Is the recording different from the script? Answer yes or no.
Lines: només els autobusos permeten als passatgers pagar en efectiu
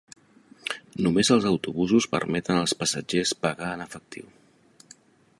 no